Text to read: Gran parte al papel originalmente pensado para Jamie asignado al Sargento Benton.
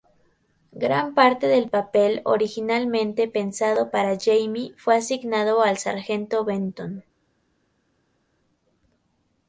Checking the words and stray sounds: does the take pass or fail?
fail